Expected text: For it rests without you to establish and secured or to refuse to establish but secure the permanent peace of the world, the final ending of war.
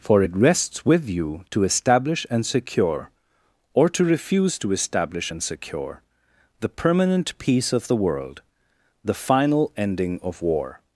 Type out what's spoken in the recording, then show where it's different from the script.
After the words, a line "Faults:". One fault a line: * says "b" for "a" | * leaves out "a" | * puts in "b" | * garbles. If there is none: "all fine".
For it rests with you to establish and secure or to refuse to establish and secure the permanent peace of the world, the final ending of war.
Faults:
* says "with" for "without"
* says "secure" for "secured"
* says "and" for "but"